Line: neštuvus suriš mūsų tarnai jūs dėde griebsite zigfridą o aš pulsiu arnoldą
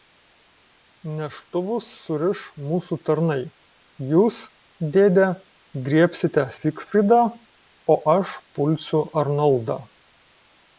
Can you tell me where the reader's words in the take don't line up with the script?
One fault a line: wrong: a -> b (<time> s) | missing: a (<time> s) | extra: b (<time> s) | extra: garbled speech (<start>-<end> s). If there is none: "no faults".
no faults